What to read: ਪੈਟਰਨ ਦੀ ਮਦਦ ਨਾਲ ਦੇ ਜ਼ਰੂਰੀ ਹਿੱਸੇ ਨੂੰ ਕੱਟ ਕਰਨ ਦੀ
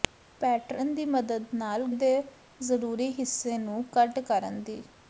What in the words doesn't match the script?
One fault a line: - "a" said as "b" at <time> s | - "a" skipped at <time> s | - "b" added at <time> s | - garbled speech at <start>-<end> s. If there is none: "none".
none